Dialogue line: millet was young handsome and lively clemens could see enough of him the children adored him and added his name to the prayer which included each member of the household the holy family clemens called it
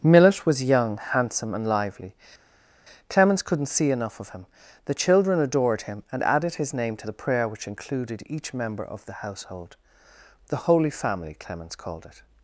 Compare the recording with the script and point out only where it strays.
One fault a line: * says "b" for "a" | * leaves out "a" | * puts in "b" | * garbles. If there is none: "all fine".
* says "couldn't" for "could"